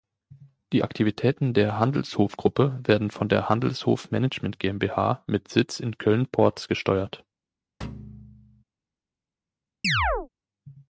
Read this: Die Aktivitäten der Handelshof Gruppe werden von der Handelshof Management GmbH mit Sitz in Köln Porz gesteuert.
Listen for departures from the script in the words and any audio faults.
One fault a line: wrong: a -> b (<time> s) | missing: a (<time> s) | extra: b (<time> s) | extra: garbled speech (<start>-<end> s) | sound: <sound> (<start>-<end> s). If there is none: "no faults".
sound: thud (7.8-8.6 s)
sound: chirp (9.8-10.3 s)